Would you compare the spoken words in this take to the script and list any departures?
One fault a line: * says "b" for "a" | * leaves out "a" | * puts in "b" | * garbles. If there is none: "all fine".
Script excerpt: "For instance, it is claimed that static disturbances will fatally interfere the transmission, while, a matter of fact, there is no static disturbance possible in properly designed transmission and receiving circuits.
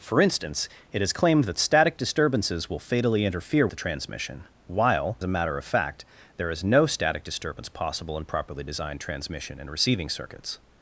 all fine